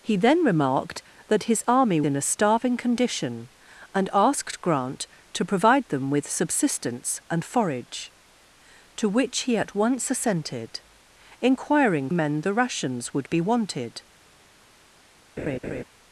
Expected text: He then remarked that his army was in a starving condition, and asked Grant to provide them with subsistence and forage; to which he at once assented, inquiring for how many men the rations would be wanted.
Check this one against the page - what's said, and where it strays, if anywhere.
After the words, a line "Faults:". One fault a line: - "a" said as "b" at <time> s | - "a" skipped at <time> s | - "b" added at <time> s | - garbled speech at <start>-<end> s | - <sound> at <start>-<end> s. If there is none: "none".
He then remarked that his army in a starving condition, and asked Grant to provide them with subsistence and forage; to which he at once assented, inquiring men the rations would be wanted.
Faults:
- "was" skipped at 2.0 s
- "for how many" skipped at 12.1 s
- laugh at 15.4-15.8 s